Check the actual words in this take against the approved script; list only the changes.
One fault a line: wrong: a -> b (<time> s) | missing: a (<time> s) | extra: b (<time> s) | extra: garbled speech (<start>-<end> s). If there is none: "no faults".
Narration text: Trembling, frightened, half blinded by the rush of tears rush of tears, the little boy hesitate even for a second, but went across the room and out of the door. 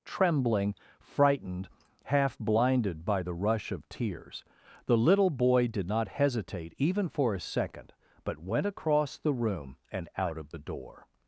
missing: rush of tears (4.4 s)
extra: did not (5.7 s)